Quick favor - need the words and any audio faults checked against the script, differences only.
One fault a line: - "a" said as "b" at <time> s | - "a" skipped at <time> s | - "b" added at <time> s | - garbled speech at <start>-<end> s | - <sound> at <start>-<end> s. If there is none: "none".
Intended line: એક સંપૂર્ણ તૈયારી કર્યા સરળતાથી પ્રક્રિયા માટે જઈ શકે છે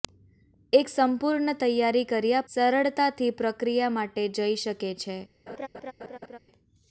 - laugh at 5.5-6.4 s